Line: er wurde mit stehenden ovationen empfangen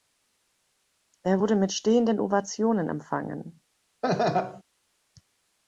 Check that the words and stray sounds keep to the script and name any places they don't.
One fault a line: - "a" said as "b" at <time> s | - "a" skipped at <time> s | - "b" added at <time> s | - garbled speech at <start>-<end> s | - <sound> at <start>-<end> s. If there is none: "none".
- laugh at 4.0-4.6 s